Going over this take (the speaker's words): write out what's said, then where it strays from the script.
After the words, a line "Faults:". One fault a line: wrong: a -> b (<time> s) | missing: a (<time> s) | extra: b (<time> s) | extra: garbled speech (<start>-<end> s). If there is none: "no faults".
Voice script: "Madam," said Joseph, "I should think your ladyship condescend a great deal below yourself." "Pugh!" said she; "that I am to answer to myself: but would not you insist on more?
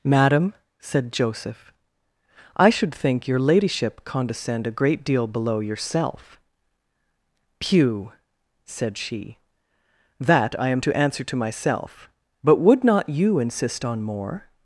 "Madam," said Joseph, "I should think your ladyship condescend a great deal below yourself." "Pugh!" said she; "that I am to answer to myself: but would not you insist on more?
Faults:
no faults